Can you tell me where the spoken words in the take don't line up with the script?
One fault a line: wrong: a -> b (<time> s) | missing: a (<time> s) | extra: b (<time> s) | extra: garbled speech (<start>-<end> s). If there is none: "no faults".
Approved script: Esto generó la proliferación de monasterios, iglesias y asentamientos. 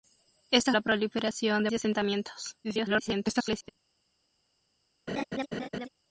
missing: generó (0.7 s)
missing: monasterios iglesias (1.7 s)
extra: garbled speech (2.6-3.7 s)